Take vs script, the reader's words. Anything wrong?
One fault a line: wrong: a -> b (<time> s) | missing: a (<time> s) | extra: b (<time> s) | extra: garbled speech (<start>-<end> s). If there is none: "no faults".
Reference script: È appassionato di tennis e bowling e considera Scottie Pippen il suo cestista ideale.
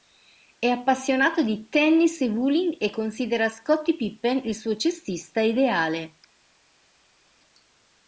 no faults